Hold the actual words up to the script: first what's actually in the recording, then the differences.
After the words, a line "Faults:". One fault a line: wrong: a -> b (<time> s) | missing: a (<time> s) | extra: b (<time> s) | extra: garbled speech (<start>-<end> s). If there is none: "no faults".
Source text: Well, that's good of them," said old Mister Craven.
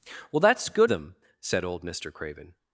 Well, that's good them," said old Mister Craven.
Faults:
missing: of (0.9 s)